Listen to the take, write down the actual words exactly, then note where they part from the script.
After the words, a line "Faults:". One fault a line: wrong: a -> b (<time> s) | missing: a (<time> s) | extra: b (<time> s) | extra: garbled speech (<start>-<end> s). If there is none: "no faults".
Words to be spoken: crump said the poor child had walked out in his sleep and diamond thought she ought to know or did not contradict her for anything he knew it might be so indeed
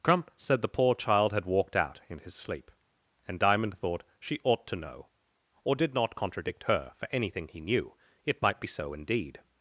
crump said the poor child had walked out in his sleep and diamond thought she ought to know or did not contradict her for anything he knew it might be so indeed
Faults:
no faults